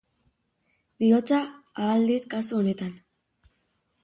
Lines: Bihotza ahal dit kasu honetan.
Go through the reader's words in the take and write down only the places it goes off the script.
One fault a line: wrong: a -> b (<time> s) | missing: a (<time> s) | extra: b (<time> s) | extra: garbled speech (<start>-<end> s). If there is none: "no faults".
no faults